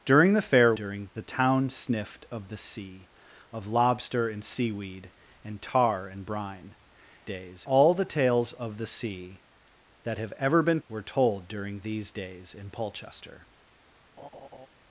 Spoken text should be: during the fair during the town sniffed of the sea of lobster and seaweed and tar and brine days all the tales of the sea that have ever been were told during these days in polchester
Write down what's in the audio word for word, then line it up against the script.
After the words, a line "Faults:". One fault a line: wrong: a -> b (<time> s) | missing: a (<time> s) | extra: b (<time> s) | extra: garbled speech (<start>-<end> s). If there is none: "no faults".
during the fair during the town sniffed of the sea of lobster and seaweed and tar and brine days all the tales of the sea that have ever been were told during these days in polchester
Faults:
no faults